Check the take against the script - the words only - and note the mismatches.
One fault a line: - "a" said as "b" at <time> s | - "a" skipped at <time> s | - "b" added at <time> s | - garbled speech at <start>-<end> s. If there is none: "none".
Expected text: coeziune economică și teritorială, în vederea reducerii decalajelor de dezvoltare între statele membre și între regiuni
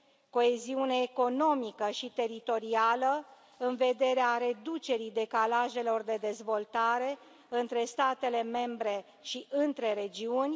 none